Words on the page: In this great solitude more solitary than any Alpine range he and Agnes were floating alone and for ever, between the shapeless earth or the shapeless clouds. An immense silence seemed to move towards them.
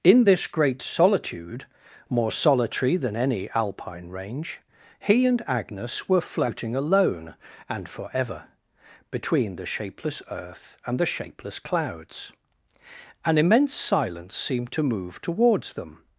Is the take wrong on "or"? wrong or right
wrong